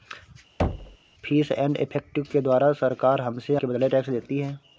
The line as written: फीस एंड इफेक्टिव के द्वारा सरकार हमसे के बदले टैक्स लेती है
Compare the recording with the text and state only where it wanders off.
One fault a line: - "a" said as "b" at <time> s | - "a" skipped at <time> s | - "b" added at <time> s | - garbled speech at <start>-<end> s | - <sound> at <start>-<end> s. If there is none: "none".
- thud at 0.6-1.0 s